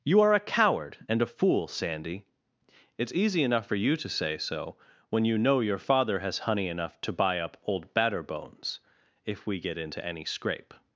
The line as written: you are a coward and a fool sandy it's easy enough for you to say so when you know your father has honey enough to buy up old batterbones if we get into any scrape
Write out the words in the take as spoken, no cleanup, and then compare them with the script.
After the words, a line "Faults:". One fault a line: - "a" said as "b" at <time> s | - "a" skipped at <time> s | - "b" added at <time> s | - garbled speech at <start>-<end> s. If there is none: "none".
you are a coward and a fool sandy it's easy enough for you to say so when you know your father has honey enough to buy up old batterbones if we get into any scrape
Faults:
none